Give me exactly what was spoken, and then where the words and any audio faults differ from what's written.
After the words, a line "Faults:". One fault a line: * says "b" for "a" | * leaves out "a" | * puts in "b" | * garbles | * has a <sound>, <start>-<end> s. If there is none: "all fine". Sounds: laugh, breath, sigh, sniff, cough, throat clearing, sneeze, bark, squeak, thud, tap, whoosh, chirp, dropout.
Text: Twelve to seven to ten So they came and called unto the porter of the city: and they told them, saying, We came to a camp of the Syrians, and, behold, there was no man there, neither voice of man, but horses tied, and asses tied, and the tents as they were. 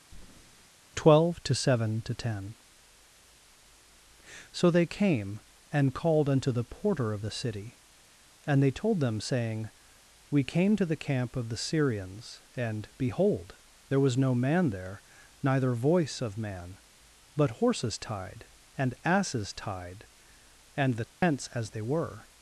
Twelve to seven to ten So they came and called unto the porter of the city: and they told them, saying, We came to the camp of the Syrians, and, behold, there was no man there, neither voice of man, but horses tied, and asses tied, and the tents as they were.
Faults:
* has a breath, 0.1-0.7 s
* says "the" for "a"
* has a dropout, 21.1-21.2 s